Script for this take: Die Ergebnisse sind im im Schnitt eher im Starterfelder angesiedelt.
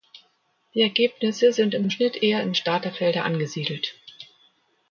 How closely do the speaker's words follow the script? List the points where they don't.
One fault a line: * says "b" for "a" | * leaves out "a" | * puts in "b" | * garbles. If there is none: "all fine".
all fine